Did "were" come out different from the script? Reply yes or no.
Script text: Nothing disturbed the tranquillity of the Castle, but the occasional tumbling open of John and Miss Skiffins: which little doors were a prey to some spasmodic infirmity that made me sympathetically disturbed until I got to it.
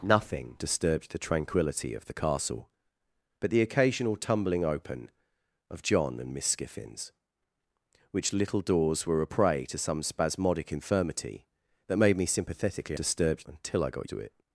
no